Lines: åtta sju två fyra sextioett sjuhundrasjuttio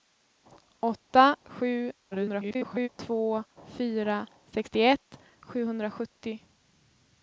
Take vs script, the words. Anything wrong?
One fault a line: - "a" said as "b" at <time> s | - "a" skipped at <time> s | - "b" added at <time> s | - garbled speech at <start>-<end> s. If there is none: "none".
- garbled speech at 2.1-2.9 s